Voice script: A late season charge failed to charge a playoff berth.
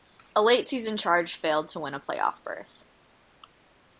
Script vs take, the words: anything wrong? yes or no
yes